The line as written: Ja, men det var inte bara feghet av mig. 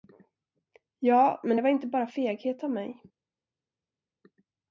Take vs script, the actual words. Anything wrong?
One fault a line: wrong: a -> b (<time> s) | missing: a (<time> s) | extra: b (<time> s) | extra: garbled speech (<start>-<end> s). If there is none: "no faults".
no faults